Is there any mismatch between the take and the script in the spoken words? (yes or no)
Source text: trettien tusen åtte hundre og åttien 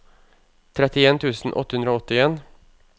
no